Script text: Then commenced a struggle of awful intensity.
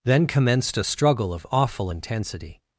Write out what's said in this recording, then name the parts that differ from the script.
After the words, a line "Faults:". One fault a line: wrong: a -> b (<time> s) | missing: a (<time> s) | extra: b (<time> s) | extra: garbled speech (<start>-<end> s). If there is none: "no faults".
Then commenced a struggle of awful intensity.
Faults:
no faults